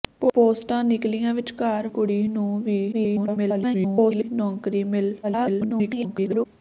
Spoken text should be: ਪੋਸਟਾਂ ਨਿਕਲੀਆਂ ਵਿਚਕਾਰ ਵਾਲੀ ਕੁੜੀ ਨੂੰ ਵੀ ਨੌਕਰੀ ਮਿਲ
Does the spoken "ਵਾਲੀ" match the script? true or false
false